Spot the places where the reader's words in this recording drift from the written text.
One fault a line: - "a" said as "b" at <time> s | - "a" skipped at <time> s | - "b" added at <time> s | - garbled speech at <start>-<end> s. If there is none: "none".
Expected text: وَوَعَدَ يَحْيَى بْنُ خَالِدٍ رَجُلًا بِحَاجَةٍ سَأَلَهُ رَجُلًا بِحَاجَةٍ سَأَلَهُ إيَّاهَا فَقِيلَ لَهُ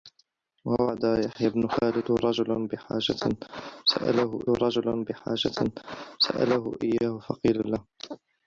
none